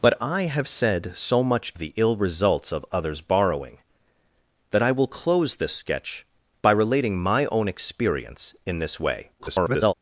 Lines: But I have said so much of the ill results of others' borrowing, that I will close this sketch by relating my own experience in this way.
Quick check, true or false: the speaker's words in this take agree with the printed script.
false